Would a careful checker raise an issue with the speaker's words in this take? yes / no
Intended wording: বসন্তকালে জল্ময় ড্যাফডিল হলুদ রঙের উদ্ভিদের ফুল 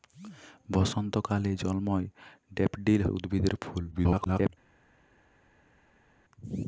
yes